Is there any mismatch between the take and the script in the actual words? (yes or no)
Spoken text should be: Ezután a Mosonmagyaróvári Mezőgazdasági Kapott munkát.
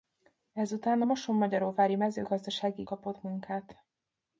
no